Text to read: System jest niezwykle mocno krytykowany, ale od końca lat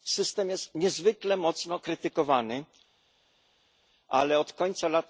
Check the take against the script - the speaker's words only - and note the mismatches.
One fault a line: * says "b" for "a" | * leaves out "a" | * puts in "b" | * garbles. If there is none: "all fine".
all fine